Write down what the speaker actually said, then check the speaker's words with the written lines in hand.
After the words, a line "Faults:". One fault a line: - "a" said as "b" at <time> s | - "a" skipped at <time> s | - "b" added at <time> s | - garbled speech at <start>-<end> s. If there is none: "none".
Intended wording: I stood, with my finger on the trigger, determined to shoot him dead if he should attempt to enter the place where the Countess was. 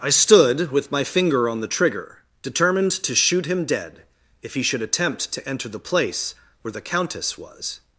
I stood, with my finger on the trigger, determined to shoot him dead if he should attempt to enter the place where the Countess was.
Faults:
none